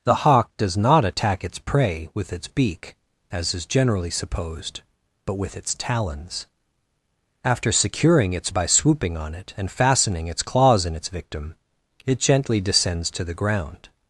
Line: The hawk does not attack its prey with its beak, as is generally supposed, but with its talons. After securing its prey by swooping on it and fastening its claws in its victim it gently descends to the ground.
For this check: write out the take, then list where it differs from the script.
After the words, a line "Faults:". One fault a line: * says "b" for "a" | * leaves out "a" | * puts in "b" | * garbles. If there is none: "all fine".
The hawk does not attack its prey with its beak, as is generally supposed, but with its talons. After securing its by swooping on it and fastening its claws in its victim it gently descends to the ground.
Faults:
* leaves out "prey"